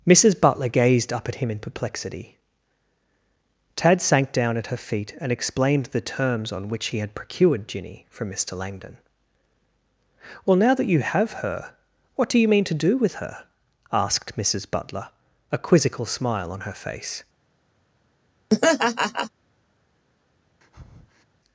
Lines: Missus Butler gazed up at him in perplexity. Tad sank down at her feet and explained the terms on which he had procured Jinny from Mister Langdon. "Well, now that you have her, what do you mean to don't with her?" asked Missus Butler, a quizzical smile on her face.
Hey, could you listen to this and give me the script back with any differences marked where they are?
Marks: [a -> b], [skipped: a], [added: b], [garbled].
Missus Butler gazed up at him in perplexity. Tad sank down at her feet and explained the terms on which he had procured Jinny from Mister Langdon. "Well, now that you have her, what do you mean to [don't -> do] with her?" asked Missus Butler, a quizzical smile on her face.